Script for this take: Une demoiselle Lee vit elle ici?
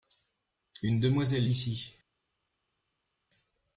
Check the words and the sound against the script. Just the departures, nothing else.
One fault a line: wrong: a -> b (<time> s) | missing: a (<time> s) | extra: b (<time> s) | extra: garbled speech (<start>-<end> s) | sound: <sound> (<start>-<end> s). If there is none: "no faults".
missing: Lee vit elle (1.4 s)